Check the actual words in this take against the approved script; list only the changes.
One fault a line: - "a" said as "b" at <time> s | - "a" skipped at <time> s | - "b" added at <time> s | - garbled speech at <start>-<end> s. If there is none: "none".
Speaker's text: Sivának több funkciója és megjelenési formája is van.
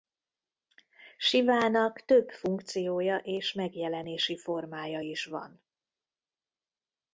none